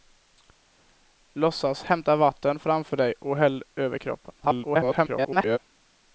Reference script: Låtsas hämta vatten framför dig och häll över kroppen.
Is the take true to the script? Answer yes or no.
no